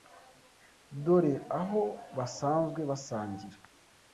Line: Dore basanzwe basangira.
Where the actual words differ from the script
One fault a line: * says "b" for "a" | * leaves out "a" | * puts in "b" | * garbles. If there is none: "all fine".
* puts in "aho"